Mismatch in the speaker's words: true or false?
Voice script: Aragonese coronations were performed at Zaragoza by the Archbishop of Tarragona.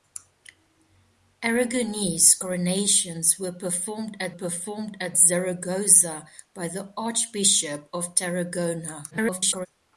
true